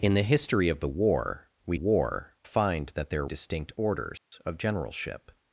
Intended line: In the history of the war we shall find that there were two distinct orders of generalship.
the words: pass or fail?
fail